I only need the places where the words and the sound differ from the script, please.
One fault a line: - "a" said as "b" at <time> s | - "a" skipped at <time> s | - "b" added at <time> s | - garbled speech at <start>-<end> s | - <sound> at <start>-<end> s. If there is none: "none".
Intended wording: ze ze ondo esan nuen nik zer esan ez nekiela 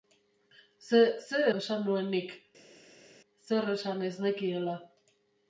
- "ondo" skipped at 1.4 s